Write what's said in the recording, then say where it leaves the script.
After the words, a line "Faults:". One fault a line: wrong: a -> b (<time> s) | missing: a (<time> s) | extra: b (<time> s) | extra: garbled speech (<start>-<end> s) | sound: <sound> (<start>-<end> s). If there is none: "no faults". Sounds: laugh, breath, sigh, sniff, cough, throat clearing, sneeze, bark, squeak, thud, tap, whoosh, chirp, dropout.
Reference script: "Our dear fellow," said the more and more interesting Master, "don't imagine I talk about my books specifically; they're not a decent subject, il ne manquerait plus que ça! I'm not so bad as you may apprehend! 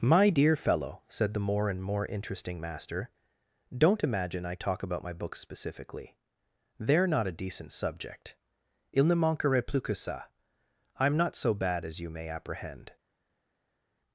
"My dear fellow," said the more and more interesting Master, "don't imagine I talk about my books specifically; they're not a decent subject, il ne manquerait plus que ça! I'm not so bad as you may apprehend!
Faults:
wrong: Our -> My (0.0 s)